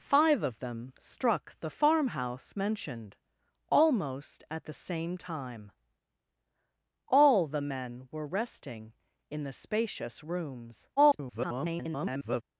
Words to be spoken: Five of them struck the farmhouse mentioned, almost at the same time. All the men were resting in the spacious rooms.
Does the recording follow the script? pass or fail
fail